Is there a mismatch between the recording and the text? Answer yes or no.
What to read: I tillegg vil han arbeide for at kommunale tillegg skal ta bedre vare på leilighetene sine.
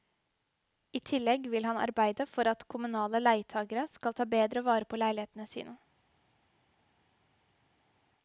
yes